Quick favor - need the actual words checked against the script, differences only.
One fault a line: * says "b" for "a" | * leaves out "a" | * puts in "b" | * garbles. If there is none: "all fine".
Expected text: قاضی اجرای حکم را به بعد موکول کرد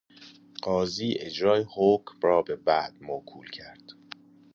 all fine